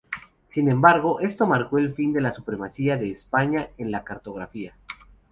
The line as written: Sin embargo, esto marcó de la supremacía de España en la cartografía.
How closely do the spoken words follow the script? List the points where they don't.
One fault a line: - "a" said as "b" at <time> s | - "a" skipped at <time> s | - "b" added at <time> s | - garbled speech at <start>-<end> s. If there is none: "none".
- "el fin" added at 1.8 s